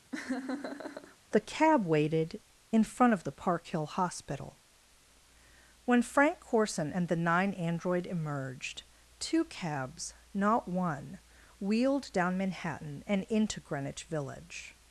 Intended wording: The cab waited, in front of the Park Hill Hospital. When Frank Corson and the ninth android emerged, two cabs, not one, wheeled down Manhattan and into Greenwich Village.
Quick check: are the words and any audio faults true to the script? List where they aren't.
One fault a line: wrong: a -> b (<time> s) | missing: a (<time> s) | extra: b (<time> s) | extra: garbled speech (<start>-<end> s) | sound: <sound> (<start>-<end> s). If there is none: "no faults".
sound: laugh (0.1-1.2 s)
wrong: ninth -> nine (7.2 s)